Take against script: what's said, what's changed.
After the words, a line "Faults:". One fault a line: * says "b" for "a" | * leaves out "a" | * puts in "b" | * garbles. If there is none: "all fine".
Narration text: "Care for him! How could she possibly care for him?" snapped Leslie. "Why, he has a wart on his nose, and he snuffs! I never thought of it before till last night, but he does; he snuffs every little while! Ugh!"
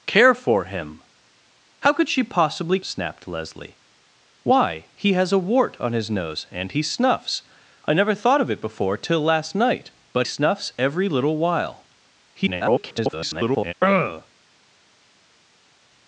"Care for him! How could she possibly?" snapped Leslie. "Why, he has a wart on his nose, and he snuffs! I never thought of it before till last night, but snuffs every little while! [garbled] Ugh!"
Faults:
* leaves out "care for him"
* leaves out "he does he"
* garbles